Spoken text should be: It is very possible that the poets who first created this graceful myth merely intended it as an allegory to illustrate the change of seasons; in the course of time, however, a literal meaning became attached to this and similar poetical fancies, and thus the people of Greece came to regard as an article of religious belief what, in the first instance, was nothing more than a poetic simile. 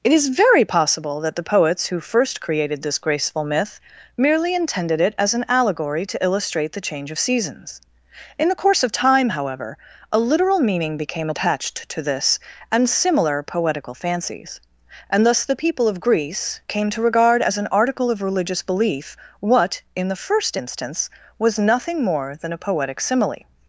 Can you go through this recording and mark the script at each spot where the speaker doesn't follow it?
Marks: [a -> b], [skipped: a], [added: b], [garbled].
It is very possible that the poets who first created this graceful myth merely intended it as an allegory to illustrate the change of seasons; in the course of time, however, a literal meaning became attached to this and similar poetical fancies, and thus the people of Greece came to regard as an article of religious belief what, in the first instance, was nothing more than a poetic simile.